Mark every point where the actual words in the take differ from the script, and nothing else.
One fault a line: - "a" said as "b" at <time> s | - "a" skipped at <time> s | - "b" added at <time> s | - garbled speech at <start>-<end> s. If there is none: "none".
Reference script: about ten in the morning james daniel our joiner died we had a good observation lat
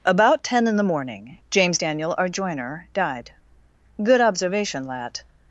- "we had a" skipped at 3.3 s